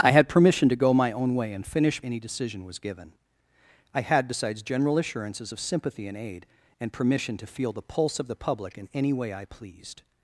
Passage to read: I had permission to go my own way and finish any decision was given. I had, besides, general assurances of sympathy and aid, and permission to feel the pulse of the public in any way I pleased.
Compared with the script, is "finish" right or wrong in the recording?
right